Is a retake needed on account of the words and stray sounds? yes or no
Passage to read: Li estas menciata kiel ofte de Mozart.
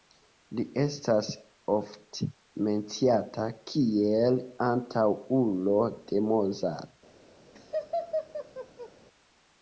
yes